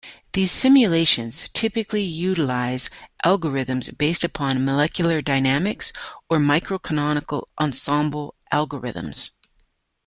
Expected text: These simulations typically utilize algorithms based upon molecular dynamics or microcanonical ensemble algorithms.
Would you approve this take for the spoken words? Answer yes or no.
yes